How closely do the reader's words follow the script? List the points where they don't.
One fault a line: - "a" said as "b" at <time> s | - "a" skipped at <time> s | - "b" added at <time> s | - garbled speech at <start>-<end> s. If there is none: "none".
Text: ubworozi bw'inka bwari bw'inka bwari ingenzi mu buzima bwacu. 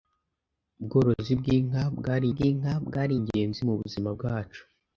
none